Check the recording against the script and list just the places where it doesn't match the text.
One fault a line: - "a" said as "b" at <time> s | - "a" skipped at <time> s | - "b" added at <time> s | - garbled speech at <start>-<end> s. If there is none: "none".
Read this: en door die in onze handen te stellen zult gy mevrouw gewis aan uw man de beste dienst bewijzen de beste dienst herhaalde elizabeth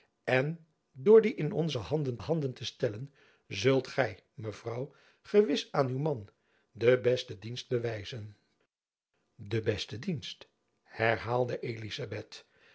- "handen" added at 2.2 s